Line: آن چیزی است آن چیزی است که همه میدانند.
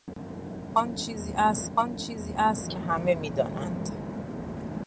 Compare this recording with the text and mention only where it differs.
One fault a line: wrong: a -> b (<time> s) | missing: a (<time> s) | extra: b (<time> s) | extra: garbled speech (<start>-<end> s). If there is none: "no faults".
no faults